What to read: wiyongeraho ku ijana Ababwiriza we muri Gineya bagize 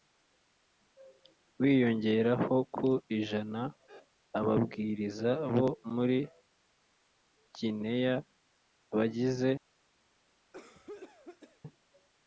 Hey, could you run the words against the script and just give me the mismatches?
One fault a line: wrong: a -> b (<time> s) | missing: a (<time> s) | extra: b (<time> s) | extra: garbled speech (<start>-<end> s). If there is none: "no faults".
wrong: we -> bo (5.5 s)